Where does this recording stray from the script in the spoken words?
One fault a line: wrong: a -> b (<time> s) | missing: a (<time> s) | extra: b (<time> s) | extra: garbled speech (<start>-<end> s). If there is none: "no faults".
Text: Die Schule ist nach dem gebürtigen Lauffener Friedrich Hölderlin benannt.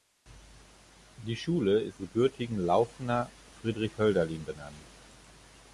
missing: nach dem (2.0 s)